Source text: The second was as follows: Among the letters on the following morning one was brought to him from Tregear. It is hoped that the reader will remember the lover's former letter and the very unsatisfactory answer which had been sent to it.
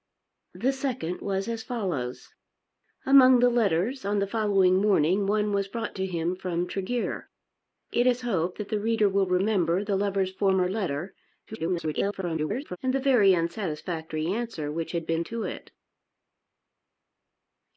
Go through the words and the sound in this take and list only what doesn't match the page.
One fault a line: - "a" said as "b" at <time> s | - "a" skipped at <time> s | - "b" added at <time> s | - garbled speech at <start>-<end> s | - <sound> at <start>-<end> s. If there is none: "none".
- garbled speech at 11.5-12.8 s
- "sent" skipped at 15.2 s